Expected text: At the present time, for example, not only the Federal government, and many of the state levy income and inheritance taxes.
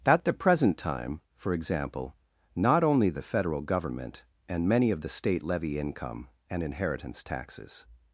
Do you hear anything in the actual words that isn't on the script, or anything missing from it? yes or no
no